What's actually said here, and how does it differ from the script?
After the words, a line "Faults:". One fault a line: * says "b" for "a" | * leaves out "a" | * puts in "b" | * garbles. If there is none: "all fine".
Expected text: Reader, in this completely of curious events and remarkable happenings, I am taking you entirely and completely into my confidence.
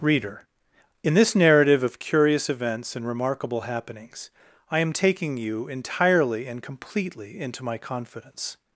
Reader, in this narrative of curious events and remarkable happenings, I am taking you entirely and completely into my confidence.
Faults:
* says "narrative" for "completely"